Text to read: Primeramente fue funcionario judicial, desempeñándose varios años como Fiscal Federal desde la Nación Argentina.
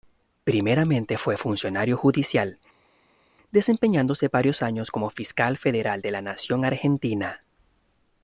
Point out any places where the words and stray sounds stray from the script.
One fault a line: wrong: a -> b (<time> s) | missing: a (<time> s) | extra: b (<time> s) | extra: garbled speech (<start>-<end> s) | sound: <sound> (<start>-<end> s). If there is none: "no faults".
wrong: desde -> de (6.0 s)